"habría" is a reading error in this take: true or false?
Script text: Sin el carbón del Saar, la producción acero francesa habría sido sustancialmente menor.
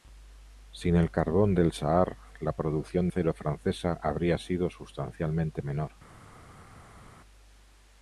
false